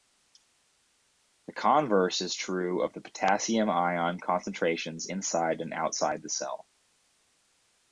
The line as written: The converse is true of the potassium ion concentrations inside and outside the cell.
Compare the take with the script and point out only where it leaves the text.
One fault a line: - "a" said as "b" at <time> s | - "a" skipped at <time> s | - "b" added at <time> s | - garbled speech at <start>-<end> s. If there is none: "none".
none